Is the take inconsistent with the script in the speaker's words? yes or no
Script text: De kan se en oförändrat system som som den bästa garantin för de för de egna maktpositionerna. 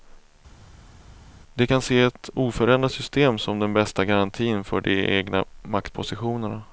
yes